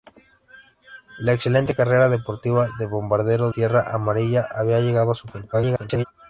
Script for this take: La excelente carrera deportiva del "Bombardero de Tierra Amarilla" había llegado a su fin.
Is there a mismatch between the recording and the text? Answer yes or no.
yes